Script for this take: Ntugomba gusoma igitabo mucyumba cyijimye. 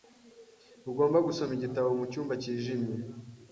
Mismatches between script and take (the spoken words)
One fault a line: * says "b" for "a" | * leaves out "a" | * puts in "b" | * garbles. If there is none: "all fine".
all fine